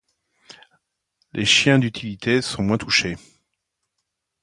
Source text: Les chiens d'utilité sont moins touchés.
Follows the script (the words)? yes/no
yes